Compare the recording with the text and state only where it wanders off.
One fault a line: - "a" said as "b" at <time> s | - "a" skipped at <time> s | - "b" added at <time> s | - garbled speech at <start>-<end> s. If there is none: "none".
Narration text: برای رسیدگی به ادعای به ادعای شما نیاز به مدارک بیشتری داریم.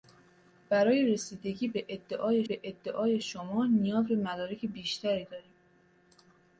none